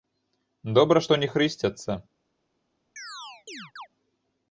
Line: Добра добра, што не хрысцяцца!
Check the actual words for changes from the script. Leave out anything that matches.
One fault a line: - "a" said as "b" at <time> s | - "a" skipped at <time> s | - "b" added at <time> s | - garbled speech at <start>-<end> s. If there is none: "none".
- "добра" skipped at 1.0 s